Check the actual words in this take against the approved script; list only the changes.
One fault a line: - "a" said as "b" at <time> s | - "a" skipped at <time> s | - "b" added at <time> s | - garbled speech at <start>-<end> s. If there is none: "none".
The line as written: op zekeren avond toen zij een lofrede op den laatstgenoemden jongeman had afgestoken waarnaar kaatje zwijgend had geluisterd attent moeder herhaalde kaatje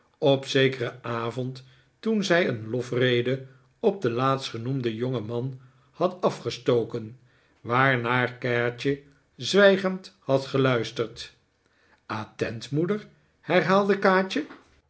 none